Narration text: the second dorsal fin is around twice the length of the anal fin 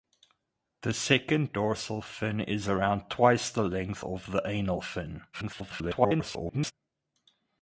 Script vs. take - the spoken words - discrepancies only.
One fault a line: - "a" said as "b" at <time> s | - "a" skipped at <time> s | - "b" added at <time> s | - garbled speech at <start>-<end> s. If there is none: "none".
- garbled speech at 5.3-6.7 s